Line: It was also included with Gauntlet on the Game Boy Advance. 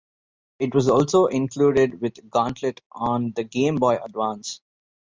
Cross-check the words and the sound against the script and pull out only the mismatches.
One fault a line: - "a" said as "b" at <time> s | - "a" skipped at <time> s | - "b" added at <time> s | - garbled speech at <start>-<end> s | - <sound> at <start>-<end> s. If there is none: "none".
none